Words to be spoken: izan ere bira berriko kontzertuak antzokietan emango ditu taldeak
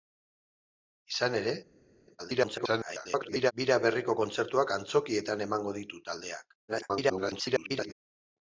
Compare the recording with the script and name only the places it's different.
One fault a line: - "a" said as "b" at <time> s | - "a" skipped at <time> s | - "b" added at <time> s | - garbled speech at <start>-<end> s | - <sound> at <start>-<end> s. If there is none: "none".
- garbled speech at 2.2-3.5 s
- garbled speech at 6.7-7.9 s